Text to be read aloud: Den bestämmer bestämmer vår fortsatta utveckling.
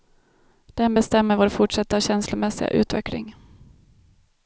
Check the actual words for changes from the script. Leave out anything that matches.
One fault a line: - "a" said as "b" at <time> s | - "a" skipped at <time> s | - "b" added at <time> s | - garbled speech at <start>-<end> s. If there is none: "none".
- "bestämmer" skipped at 1.4 s
- "känslomässiga" added at 2.0 s